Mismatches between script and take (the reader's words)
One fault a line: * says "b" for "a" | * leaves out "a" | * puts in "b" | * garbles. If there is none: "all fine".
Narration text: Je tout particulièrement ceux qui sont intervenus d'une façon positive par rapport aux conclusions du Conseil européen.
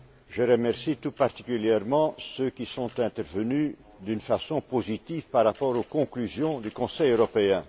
* puts in "remercie"